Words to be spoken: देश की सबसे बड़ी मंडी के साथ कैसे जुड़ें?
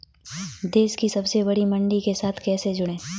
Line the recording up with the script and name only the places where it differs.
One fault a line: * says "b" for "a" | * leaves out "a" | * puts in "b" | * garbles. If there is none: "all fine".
all fine